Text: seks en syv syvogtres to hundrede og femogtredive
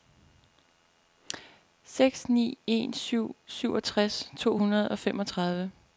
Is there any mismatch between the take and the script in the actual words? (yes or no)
yes